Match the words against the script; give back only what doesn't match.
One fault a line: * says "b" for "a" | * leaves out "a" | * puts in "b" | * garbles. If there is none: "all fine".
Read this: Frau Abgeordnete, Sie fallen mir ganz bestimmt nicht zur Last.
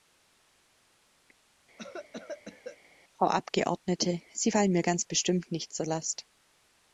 all fine